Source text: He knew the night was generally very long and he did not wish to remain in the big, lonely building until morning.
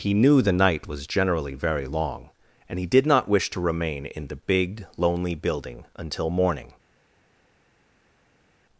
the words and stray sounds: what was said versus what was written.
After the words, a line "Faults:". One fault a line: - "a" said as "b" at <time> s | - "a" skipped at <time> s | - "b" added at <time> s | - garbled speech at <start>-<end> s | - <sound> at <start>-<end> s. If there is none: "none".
He knew the night was generally very long and he did not wish to remain in the big, lonely building until morning.
Faults:
none